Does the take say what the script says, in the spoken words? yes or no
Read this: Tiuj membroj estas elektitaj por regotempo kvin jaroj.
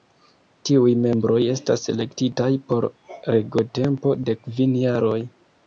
no